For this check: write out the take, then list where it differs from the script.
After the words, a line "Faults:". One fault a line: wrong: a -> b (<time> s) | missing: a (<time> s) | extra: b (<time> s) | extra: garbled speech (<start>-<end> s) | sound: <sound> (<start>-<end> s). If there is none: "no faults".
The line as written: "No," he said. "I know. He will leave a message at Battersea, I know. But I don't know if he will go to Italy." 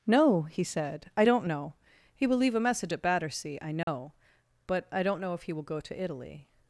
"No," he said. "I don't know. He will leave a message at Battersea, I know. But I don't know if he will go to Italy."
Faults:
extra: don't (1.2 s)
sound: dropout (3.8-3.9 s)